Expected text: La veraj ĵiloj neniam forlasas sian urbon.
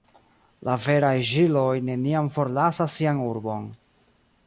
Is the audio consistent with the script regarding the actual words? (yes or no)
yes